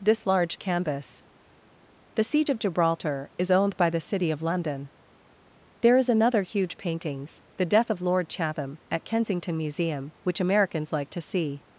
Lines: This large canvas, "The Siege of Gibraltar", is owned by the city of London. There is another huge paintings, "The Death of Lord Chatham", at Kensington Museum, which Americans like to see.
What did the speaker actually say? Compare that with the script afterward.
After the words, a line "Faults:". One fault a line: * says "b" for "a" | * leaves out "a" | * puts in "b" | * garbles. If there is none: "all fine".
This large canvas, "The Siege of Gibraltar", is owned by the city of London. There is another huge paintings, "The Death of Lord Chatham", at Kensington Museum, which Americans like to see.
Faults:
all fine